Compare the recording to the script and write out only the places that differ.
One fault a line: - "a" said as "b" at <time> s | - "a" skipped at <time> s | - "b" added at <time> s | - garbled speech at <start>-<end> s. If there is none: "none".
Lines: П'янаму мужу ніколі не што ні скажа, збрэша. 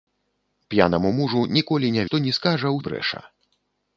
none